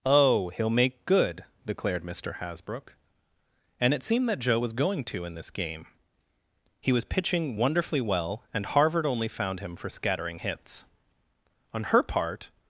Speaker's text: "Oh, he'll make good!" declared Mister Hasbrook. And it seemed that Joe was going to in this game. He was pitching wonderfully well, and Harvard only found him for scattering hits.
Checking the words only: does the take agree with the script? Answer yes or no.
no